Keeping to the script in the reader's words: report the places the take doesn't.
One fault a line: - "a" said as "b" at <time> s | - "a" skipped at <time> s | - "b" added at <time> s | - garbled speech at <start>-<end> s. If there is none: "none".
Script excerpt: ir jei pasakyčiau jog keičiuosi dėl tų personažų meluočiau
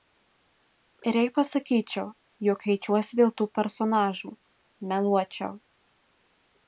none